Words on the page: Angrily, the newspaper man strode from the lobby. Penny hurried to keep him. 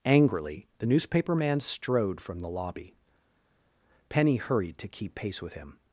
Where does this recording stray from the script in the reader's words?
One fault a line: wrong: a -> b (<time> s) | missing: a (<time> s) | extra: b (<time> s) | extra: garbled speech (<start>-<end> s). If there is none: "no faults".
extra: pace with (5.1 s)